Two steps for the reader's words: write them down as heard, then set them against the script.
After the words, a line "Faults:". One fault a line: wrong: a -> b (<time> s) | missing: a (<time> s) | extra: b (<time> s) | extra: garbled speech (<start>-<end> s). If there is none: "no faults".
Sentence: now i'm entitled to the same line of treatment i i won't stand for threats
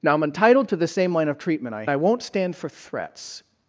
now i'm entitled to the same line of treatment i i won't stand for threats
Faults:
no faults